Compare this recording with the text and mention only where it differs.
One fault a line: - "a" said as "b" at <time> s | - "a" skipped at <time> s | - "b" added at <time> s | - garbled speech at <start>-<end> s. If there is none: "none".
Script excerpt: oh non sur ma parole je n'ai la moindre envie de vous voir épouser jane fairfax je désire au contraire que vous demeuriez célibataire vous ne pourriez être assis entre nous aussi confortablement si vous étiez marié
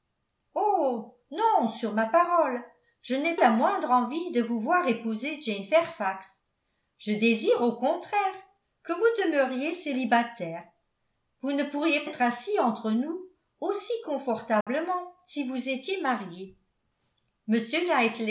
none